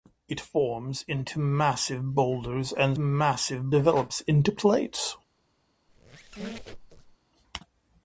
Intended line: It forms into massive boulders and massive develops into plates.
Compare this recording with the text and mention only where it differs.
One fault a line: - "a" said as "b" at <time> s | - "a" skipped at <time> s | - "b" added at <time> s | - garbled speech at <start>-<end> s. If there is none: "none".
none